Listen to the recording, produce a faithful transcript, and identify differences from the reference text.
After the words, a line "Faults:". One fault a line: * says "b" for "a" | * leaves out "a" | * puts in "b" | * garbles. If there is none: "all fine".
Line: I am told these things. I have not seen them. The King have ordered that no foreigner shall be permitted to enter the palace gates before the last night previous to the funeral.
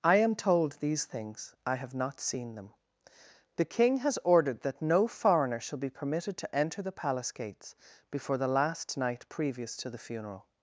I am told these things. I have not seen them. The King has ordered that no foreigner shall be permitted to enter the palace gates before the last night previous to the funeral.
Faults:
* says "has" for "have"